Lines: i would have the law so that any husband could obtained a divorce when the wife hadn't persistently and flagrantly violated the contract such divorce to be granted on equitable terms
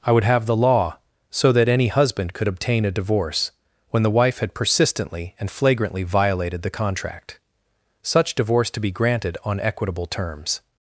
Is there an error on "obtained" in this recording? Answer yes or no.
yes